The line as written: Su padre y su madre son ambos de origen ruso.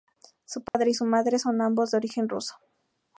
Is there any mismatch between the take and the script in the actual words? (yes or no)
no